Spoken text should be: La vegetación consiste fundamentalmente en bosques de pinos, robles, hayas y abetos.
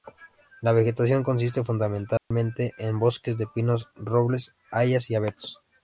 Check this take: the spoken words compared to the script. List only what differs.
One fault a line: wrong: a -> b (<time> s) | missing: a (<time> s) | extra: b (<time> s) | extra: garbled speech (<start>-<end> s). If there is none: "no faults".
no faults